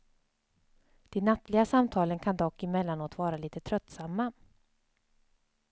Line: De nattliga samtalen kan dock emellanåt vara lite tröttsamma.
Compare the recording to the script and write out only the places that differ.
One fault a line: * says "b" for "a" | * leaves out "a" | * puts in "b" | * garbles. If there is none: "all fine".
all fine